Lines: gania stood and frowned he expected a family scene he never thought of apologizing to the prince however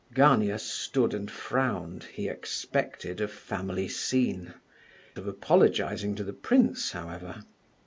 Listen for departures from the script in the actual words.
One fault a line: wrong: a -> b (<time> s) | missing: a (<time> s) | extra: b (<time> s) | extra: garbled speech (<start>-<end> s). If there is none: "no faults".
missing: he never thought (4.5 s)